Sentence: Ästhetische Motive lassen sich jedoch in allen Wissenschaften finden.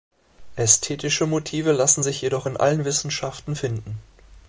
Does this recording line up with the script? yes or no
yes